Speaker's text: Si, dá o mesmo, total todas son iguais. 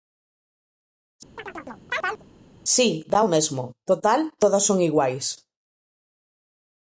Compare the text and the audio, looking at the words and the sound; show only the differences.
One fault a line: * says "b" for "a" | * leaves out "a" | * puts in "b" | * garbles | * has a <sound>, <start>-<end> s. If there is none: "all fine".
* has a chirp, 1.4-2.2 s